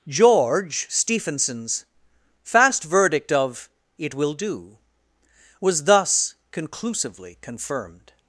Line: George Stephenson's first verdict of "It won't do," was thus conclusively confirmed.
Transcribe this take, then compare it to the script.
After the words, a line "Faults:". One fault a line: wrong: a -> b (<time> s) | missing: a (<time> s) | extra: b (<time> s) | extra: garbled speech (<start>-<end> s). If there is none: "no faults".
George Stephenson's fast verdict of "It will do," was thus conclusively confirmed.
Faults:
wrong: first -> fast (2.4 s)
wrong: won't -> will (4.1 s)